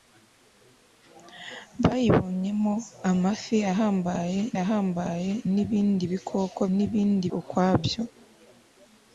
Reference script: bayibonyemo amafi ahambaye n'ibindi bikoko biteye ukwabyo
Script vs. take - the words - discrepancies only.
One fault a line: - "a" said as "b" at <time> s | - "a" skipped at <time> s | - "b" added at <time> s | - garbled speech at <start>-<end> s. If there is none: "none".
- "ahambaye" added at 4.6 s
- "biteye" said as "n'ibindi" at 6.8 s